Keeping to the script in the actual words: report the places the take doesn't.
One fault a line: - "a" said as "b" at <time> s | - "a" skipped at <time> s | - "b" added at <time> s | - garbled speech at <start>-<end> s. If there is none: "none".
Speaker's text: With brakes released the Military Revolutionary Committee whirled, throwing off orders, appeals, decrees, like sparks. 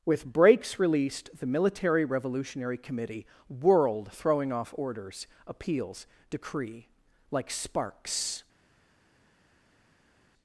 - "decrees" said as "decree" at 6.3 s